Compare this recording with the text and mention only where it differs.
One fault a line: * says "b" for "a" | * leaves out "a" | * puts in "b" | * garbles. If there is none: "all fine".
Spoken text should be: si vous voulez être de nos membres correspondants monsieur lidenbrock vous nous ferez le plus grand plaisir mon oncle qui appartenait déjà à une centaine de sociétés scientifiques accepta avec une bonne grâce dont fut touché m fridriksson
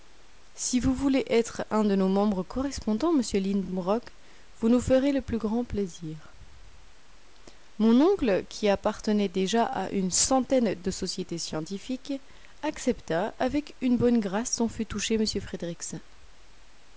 * puts in "un"